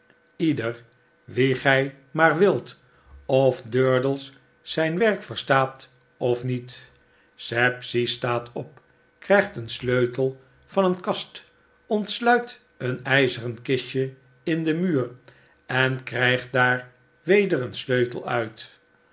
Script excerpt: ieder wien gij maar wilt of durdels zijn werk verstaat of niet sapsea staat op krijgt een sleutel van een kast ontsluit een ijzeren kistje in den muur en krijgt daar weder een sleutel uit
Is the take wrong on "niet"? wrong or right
right